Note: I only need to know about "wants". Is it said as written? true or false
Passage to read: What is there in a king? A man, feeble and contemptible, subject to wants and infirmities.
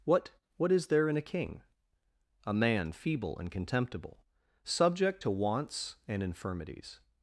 true